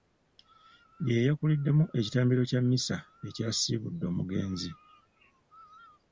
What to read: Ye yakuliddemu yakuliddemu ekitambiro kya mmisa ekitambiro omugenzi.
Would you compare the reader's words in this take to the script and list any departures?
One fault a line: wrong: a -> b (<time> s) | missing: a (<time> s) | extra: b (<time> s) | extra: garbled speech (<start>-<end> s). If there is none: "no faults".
missing: yakuliddemu (1.8 s)
wrong: ekitambiro -> ekyasiibudde (3.3 s)